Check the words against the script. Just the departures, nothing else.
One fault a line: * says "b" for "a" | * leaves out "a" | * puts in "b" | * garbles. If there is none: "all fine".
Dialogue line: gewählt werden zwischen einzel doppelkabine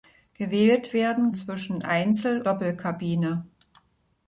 all fine